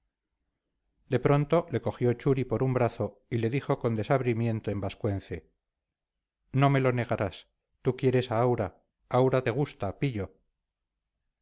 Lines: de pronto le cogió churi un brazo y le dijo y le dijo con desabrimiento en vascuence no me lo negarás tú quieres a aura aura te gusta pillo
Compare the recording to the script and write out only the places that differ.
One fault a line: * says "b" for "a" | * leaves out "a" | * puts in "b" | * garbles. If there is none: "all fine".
* puts in "por"
* leaves out "y le dijo"